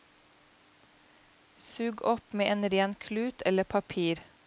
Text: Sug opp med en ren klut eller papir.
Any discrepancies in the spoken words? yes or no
no